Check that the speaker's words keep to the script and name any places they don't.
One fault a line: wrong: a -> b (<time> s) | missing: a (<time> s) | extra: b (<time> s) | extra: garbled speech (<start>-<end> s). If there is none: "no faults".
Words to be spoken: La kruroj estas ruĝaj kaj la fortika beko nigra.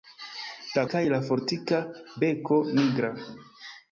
missing: kruroj estas ruĝaj (0.8 s)